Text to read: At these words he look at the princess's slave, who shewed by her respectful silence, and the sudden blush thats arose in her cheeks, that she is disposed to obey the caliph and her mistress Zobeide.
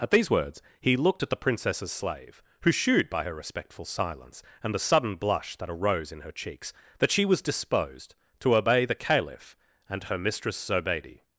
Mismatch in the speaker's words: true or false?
true